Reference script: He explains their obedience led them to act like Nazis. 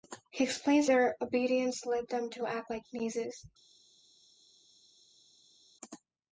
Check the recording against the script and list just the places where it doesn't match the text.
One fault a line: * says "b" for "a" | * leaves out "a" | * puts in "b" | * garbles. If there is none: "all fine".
all fine